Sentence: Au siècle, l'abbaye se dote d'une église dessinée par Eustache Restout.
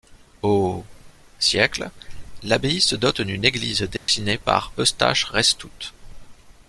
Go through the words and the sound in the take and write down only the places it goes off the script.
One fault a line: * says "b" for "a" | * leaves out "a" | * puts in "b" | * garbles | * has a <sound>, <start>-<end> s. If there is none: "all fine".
* has a dropout, 4.0-4.1 s